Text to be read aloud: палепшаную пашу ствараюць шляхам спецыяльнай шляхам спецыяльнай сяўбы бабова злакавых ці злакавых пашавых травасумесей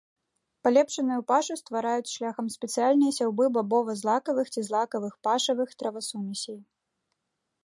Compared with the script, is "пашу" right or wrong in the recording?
right